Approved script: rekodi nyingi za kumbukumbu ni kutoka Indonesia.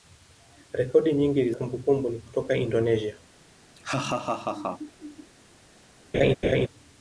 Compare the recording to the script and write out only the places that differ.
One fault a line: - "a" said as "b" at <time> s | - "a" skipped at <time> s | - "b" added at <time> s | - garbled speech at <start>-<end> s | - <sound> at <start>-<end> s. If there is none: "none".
- "za" skipped at 1.5 s
- laugh at 3.8-5.3 s
- laugh at 6.1-6.7 s